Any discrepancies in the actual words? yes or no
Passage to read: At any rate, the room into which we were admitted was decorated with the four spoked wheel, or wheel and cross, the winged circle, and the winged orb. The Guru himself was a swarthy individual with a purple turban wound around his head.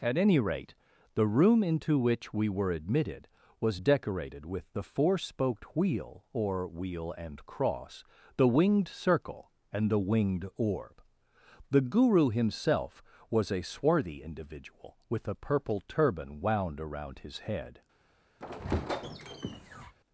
no